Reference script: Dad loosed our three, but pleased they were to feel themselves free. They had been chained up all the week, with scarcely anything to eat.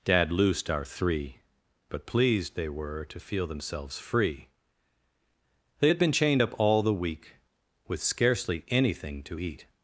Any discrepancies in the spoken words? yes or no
no